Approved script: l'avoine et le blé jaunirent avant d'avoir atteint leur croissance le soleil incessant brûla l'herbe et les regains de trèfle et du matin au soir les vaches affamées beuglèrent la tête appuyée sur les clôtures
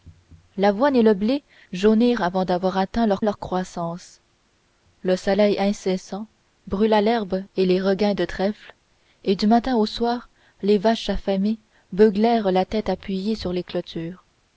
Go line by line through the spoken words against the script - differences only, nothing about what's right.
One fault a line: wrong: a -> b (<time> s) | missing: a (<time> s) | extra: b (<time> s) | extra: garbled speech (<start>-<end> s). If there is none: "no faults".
extra: leur (3.2 s)